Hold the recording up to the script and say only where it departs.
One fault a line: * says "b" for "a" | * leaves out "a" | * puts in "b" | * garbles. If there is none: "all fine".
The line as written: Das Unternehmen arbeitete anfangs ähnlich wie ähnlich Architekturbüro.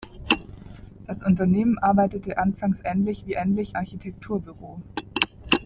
all fine